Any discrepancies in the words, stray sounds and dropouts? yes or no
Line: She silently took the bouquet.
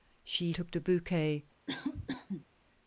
yes